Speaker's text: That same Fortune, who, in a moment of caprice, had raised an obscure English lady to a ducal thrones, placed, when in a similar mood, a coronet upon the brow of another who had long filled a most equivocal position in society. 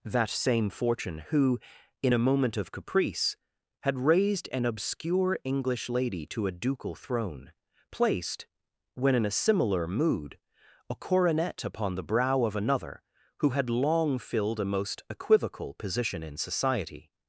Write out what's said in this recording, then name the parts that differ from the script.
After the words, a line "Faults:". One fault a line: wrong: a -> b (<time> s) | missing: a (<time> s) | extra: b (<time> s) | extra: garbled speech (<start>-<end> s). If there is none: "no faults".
That same Fortune, who, in a moment of caprice, had raised an obscure English lady to a ducal throne, placed, when in a similar mood, a coronet upon the brow of another who had long filled a most equivocal position in society.
Faults:
wrong: thrones -> throne (6.9 s)